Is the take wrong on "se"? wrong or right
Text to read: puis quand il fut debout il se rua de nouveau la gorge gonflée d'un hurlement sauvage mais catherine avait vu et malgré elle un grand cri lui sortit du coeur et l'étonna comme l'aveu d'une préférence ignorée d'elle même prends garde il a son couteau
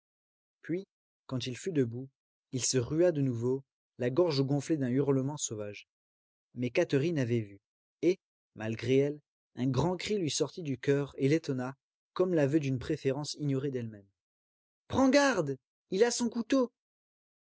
right